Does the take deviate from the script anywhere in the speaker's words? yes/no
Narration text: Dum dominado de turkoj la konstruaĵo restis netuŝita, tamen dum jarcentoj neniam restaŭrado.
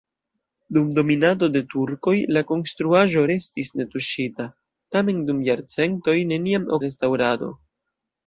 no